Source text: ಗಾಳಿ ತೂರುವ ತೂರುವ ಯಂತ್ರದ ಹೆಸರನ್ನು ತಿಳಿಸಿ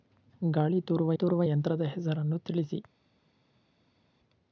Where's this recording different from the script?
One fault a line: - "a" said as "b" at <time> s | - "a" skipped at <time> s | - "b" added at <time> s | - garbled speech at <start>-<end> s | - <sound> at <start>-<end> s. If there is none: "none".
none